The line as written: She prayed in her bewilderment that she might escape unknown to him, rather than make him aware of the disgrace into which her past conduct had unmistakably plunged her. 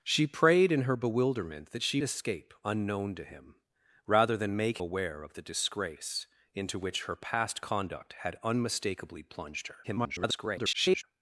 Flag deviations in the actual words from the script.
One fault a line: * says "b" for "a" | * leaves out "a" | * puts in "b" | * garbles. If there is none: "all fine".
* leaves out "might"
* leaves out "him"
* garbles